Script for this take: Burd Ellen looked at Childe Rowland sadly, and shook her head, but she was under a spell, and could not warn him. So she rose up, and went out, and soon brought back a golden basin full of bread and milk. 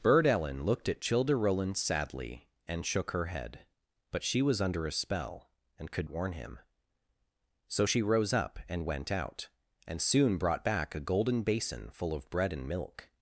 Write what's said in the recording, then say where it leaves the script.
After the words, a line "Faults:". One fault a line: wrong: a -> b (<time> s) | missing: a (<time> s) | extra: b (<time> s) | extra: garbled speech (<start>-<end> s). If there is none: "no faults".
Burd Ellen looked at Childe Rowland sadly, and shook her head, but she was under a spell, and could warn him. So she rose up, and went out, and soon brought back a golden basin full of bread and milk.
Faults:
missing: not (6.1 s)